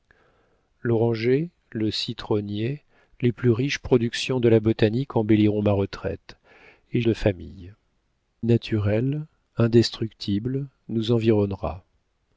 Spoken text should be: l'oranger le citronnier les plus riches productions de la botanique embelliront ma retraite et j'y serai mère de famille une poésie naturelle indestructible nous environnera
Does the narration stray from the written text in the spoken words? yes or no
yes